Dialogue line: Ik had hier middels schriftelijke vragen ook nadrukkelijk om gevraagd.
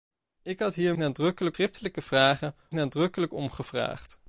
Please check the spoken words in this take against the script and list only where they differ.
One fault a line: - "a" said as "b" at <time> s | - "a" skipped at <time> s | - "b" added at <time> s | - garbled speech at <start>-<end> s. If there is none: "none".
- "middels" said as "nadrukkelijk" at 0.9 s
- "ook" skipped at 2.5 s